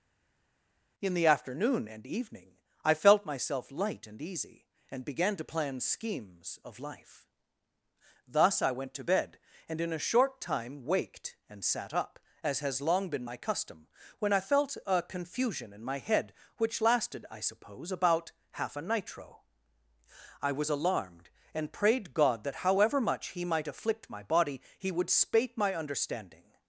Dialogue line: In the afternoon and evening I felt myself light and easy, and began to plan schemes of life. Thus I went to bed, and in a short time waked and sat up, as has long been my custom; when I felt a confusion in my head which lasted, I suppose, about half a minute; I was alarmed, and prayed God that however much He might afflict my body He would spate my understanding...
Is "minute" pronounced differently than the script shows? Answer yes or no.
yes